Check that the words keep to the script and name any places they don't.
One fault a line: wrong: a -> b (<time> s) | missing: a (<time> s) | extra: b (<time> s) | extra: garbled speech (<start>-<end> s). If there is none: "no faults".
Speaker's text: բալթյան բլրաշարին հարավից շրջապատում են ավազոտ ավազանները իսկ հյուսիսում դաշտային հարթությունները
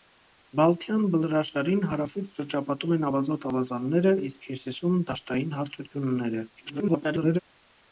extra: garbled speech (6.6-7.4 s)